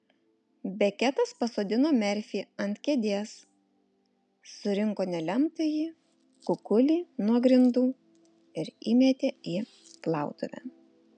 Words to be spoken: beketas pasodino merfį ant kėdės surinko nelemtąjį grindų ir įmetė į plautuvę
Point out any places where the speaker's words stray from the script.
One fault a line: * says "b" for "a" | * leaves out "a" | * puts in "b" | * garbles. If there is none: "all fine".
* puts in "kukulį nuo"